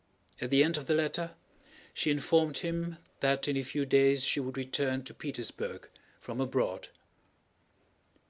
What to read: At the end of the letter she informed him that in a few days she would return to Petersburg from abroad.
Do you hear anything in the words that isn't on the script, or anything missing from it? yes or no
no